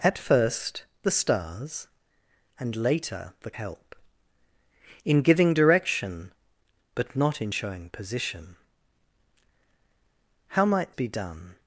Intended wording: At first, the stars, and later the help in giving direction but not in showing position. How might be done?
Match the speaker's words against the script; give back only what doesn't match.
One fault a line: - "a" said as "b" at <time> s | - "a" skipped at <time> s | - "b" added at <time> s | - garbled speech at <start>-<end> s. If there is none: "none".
none